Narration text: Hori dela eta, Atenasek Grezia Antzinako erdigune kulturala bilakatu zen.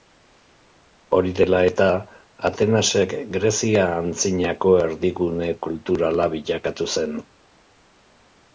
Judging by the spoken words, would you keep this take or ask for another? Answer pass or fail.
pass